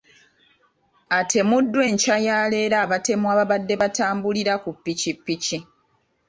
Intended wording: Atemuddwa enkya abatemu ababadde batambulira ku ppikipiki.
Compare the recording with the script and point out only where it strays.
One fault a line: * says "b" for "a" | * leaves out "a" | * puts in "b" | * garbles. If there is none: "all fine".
* puts in "ya leero"